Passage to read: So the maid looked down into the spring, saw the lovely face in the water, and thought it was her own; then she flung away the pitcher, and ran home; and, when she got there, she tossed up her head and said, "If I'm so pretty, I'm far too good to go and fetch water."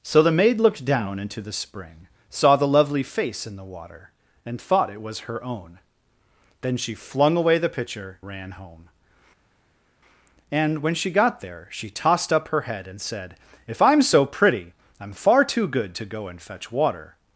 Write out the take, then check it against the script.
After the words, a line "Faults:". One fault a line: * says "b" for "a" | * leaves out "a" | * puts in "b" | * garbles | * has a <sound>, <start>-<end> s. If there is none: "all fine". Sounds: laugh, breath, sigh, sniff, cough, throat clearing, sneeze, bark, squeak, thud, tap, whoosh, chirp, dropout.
So the maid looked down into the spring, saw the lovely face in the water, and thought it was her own; then she flung away the pitcher, ran home; and, when she got there, she tossed up her head and said, "If I'm so pretty, I'm far too good to go and fetch water."
Faults:
* leaves out "and"